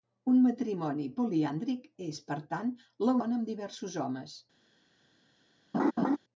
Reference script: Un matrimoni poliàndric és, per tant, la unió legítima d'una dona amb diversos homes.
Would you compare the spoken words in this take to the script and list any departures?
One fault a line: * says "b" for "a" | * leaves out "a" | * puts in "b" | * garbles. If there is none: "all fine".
* leaves out "unió legítima d'una"